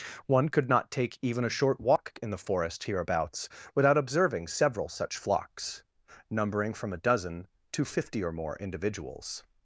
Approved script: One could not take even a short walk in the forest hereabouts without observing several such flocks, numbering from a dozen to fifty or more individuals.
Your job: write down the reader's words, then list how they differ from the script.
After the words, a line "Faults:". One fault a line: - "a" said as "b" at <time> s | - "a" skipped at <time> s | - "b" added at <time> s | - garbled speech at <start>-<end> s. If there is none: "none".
One could not take even a short walk in the forest hereabouts without observing several such flocks, numbering from a dozen to fifty or more individuals.
Faults:
none